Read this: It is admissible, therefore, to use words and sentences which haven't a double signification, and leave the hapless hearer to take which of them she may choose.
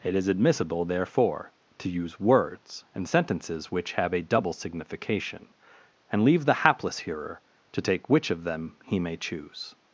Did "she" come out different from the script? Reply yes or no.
yes